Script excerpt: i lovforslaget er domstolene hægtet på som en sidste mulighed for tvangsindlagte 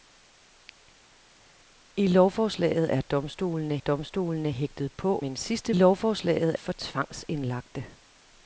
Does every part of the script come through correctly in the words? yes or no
no